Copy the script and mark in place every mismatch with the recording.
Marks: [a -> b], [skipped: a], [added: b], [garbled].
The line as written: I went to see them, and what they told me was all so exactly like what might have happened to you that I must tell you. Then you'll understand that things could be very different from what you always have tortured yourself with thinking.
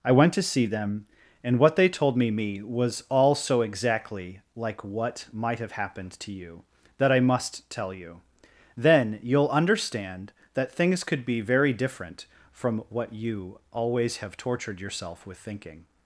I went to see them, and what they told me [added: me] was all so exactly like what might have happened to you that I must tell you. Then you'll understand that things could be very different from what you always have tortured yourself with thinking.